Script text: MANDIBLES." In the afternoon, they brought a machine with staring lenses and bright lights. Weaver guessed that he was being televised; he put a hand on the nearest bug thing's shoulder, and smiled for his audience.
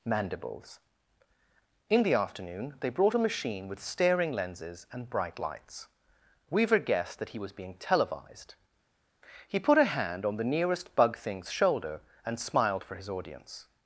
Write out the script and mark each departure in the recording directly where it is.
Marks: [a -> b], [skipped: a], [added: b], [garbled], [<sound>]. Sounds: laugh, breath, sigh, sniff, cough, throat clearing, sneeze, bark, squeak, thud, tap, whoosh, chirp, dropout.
MANDIBLES." In the afternoon, they brought a machine with staring lenses and bright lights. Weaver guessed that he was being televised; he put a hand on the nearest bug thing's shoulder, and smiled for his audience.